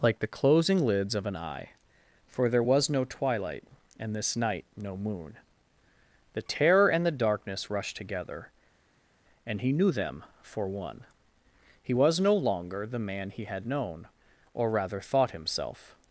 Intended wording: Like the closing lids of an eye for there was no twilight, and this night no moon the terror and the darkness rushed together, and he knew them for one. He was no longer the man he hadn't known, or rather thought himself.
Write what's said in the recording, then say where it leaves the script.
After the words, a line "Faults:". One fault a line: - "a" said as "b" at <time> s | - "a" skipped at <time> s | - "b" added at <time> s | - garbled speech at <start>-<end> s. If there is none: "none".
Like the closing lids of an eye for there was no twilight, and this night no moon the terror and the darkness rushed together, and he knew them for one. He was no longer the man he had known, or rather thought himself.
Faults:
- "hadn't" said as "had" at 13.5 s